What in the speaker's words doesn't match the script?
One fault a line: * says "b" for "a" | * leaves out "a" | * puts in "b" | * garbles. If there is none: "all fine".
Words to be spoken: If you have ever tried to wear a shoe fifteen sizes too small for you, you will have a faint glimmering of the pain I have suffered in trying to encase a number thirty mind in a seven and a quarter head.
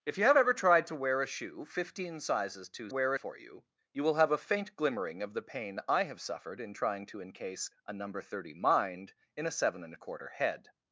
* says "wear" for "small"